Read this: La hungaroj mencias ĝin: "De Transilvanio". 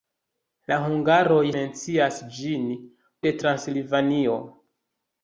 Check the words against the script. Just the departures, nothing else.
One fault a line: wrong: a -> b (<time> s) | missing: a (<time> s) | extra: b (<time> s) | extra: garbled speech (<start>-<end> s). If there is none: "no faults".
no faults